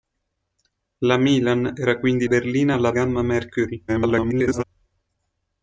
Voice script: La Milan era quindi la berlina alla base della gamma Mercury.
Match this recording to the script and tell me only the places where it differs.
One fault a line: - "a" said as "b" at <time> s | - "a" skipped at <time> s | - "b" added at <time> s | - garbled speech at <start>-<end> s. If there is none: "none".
- "la" skipped at 2.3 s
- "base della" skipped at 2.9 s
- garbled speech at 3.9-4.6 s